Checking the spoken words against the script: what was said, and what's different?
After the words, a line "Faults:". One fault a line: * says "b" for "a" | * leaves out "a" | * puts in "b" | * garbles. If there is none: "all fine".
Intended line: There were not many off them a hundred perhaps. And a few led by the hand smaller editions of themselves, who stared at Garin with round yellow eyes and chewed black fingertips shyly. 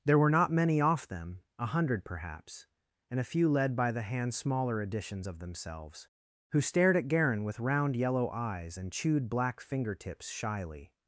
There were not many off them a hundred perhaps. And a few led by the hand smaller editions of themselves, who stared at Garin with round yellow eyes and chewed black fingertips shyly.
Faults:
all fine